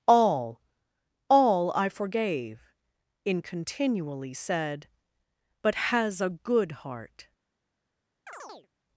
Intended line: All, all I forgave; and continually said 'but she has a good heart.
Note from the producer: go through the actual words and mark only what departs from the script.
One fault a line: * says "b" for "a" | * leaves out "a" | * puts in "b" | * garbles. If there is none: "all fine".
* says "in" for "and"
* leaves out "she"